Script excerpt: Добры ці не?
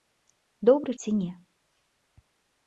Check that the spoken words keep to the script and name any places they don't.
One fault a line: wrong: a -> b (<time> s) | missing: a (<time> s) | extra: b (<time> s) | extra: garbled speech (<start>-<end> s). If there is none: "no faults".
no faults